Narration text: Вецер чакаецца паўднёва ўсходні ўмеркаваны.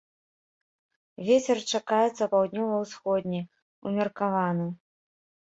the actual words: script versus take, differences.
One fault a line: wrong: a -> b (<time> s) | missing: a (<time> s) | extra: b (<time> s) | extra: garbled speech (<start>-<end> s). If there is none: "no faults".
no faults